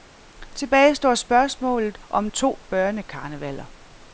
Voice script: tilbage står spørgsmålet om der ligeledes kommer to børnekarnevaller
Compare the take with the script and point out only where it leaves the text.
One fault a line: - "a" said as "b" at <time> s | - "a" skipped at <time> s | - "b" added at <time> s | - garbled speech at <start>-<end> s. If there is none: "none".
- "der ligeledes kommer" skipped at 2.3 s